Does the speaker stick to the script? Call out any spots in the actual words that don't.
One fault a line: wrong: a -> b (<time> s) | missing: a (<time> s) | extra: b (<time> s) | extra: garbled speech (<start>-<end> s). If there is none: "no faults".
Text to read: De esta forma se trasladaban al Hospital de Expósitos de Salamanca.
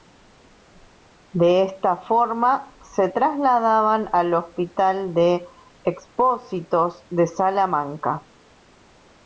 no faults